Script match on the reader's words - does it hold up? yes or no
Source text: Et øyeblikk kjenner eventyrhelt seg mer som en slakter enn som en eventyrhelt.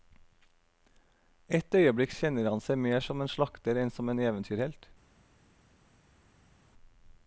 no